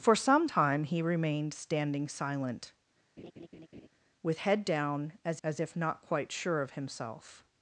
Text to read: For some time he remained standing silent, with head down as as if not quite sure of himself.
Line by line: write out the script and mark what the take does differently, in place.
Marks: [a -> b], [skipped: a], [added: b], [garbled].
For some time he remained standing silent, with head down as as if not quite sure of himself.